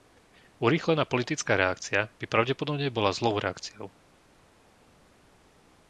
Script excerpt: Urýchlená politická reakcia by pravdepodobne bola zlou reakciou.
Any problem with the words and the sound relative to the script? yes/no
no